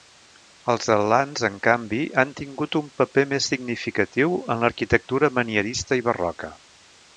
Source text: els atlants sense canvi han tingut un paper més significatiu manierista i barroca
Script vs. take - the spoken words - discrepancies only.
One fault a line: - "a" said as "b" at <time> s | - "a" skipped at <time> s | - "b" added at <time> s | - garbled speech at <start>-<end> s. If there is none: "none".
- "sense" said as "en" at 1.5 s
- "en l'arquitectura" added at 4.5 s